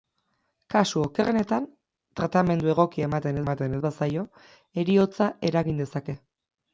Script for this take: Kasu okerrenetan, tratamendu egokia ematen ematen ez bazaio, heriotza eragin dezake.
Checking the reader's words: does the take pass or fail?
pass